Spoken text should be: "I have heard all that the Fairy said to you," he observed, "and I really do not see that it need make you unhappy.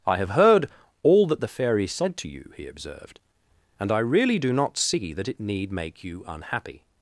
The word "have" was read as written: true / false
true